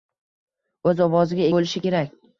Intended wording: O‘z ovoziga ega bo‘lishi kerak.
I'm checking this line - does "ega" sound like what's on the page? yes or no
no